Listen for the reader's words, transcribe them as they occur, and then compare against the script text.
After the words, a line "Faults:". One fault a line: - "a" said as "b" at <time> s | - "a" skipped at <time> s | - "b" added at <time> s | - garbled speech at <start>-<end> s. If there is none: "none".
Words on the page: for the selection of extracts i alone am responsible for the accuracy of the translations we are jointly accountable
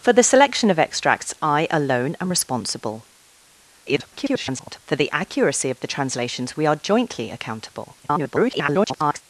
for the selection of extracts i alone am responsible [garbled] for the accuracy of the translations we are jointly accountable [garbled]
Faults:
- garbled speech at 3.9-4.8 s
- garbled speech at 8.0-9.2 s